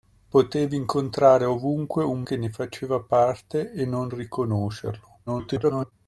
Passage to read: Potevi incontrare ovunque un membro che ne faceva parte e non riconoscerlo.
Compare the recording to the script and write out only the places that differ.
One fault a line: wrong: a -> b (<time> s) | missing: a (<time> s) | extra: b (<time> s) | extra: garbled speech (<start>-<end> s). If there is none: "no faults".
missing: membro (2.2 s)
extra: garbled speech (5.3-5.9 s)